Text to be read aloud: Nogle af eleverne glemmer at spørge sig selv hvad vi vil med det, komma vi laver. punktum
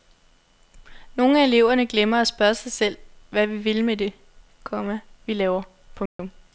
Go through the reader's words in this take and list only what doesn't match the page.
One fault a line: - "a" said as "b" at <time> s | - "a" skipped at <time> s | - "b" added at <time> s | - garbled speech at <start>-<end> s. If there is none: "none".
none